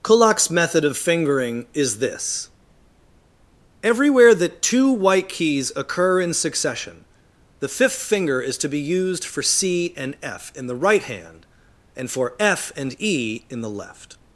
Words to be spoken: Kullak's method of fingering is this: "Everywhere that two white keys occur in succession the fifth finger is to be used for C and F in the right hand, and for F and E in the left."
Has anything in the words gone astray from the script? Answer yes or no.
no